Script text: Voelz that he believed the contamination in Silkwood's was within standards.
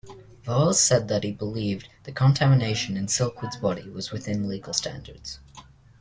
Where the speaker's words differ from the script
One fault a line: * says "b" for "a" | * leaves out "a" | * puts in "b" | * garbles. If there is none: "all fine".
* puts in "said"
* puts in "body"
* puts in "legal"